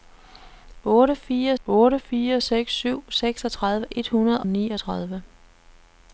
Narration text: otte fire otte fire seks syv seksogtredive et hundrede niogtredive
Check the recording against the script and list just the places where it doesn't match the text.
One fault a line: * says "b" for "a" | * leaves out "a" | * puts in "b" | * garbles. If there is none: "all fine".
all fine